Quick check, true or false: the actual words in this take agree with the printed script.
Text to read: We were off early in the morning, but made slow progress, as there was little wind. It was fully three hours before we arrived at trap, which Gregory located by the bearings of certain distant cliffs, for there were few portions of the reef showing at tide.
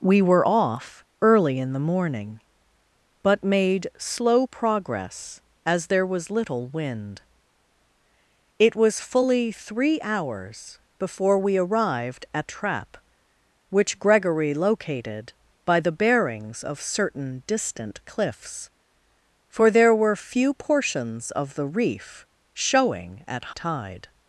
true